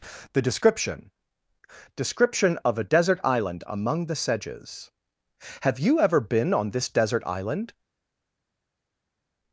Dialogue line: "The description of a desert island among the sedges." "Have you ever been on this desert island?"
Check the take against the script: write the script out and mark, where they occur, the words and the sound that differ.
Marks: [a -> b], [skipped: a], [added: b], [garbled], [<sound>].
"The description [added: description] of a desert island among the sedges." "Have you ever been on this desert island?"